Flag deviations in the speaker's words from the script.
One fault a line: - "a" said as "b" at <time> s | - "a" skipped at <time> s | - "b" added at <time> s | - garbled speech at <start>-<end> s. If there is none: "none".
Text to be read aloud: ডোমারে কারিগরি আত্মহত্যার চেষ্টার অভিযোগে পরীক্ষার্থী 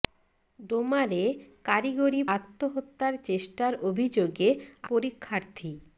none